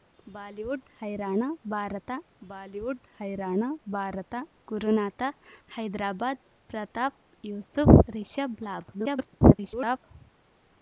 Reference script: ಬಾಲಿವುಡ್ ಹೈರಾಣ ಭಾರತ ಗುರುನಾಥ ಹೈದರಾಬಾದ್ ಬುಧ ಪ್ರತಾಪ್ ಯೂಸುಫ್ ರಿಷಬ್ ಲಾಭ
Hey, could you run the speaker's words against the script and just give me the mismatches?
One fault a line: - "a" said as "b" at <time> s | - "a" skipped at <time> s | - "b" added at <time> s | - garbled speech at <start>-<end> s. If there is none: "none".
- "ಬಾಲಿವುಡ್ ಹೈರಾಣ ಭಾರತ" added at 2.4 s
- "ಬುಧ" skipped at 6.4 s
- garbled speech at 8.9-10.0 s